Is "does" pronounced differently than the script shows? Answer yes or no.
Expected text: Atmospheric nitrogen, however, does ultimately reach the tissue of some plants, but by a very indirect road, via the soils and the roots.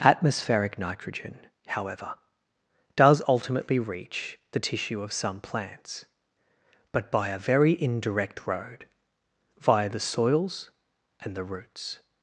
no